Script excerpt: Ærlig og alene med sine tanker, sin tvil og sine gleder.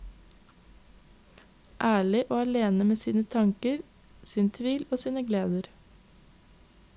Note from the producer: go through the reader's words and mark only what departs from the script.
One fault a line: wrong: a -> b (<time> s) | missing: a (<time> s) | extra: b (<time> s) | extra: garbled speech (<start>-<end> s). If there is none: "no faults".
no faults